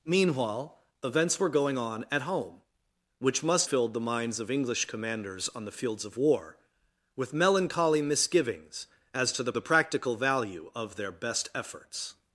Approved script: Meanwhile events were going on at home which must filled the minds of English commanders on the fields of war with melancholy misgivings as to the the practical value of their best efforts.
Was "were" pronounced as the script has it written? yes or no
yes